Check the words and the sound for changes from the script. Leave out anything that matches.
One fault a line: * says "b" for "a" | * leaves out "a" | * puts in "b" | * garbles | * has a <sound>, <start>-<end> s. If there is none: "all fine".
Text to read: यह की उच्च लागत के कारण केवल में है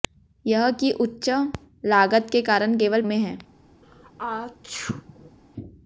* has a sneeze, 3.8-5.4 s